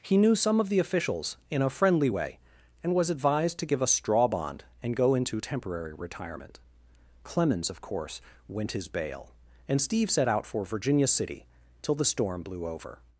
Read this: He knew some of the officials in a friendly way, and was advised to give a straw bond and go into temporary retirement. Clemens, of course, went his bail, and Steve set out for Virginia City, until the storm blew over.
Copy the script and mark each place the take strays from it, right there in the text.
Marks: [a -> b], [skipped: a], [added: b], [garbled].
He knew some of the officials in a friendly way, and was advised to give a straw bond and go into temporary retirement. Clemens, of course, went his bail, and Steve set out for Virginia City, [until -> till] the storm blew over.